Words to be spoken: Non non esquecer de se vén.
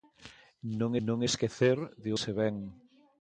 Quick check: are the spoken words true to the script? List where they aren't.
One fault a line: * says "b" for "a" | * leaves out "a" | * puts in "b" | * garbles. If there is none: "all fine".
all fine